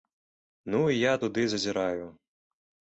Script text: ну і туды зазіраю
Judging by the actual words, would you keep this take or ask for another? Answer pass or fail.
fail